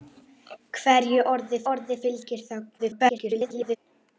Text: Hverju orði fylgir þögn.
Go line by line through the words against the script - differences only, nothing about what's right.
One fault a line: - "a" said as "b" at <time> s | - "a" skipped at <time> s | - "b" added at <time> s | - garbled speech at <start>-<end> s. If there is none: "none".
- "orði" added at 1.7 s
- garbled speech at 2.8-3.8 s